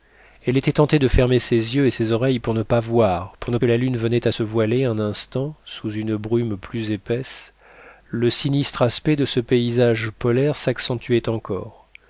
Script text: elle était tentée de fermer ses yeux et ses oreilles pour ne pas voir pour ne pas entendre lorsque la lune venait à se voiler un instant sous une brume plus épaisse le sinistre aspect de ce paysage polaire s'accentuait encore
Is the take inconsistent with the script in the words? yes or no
yes